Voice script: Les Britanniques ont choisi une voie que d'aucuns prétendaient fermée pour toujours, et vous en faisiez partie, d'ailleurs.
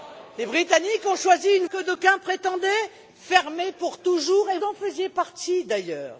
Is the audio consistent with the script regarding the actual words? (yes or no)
no